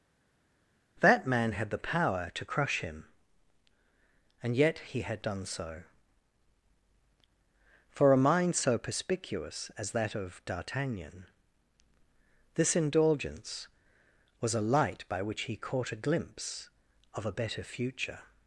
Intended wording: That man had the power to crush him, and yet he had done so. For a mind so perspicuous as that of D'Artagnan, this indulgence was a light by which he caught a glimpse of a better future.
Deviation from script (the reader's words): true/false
false